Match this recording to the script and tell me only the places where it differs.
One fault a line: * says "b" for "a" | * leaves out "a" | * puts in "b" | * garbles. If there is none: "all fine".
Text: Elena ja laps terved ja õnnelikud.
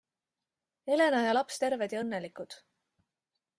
all fine